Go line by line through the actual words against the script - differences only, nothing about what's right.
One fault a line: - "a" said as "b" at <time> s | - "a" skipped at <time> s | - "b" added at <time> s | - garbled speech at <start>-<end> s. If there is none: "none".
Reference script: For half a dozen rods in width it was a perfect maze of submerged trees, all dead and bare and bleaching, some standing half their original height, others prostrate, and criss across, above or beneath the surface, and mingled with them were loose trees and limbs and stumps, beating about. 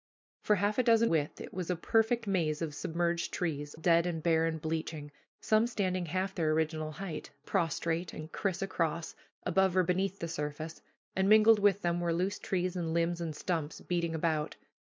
- "rods in" skipped at 1.1 s
- "all" skipped at 3.8 s
- "others" skipped at 7.3 s